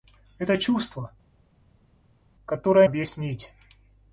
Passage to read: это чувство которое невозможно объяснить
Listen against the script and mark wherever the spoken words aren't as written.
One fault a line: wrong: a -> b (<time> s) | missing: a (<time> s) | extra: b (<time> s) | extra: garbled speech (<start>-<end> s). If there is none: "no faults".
missing: невозможно (2.9 s)